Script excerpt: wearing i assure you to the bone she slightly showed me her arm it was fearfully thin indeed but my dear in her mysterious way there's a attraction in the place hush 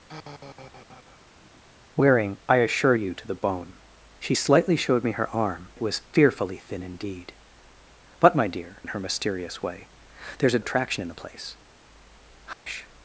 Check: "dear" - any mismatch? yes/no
no